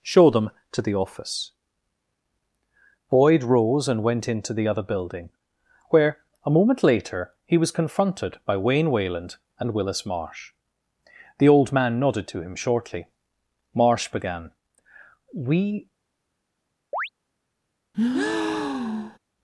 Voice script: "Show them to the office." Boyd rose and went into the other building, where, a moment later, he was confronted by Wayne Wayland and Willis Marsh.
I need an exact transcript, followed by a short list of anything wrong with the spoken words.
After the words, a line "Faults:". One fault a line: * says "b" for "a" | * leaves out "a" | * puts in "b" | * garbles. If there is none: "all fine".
"Show them to the office." Boyd rose and went into the other building, where, a moment later, he was confronted by Wayne Wayland and Willis Marsh. The old man nodded to him shortly. Marsh began: "We
Faults:
* puts in "The old man nodded to him shortly Marsh began We"